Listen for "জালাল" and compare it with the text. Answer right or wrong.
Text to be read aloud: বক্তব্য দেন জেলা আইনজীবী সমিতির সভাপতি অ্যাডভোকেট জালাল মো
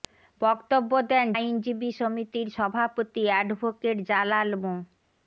right